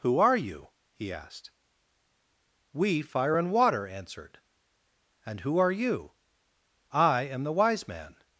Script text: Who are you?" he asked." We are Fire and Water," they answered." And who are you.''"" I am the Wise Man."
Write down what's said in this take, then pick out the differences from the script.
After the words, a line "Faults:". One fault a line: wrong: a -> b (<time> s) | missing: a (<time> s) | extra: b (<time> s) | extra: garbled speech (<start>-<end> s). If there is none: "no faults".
Who are you?" he asked." We Fire and Water," answered." And who are you.''"" I am the Wise Man."
Faults:
missing: are (3.0 s)
missing: they (3.9 s)